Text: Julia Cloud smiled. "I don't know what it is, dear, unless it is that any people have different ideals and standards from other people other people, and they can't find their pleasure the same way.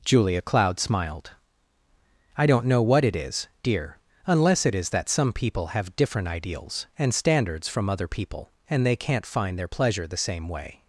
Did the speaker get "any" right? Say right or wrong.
wrong